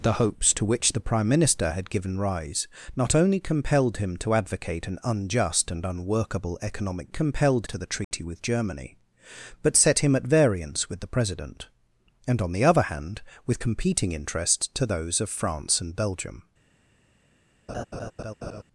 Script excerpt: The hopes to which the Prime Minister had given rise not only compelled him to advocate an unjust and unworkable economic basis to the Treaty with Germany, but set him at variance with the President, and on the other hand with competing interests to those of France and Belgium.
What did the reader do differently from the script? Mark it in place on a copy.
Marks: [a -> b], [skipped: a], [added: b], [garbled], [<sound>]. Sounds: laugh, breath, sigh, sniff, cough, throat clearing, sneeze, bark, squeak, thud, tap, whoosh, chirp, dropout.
The hopes to which the Prime Minister had given rise not only compelled him to advocate an unjust and unworkable economic [basis -> compelled] to the Treaty [dropout] with Germany, but set him at variance with the President, and on the other hand with competing interests to those of France and Belgium. [laugh]